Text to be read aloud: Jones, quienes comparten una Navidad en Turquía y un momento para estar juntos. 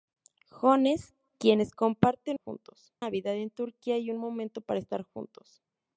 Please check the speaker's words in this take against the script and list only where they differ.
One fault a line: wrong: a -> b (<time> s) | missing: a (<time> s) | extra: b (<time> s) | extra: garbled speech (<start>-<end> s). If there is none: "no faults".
wrong: una -> juntos (2.3 s)